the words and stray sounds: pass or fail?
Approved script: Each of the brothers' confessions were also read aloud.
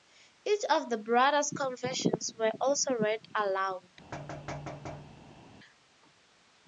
fail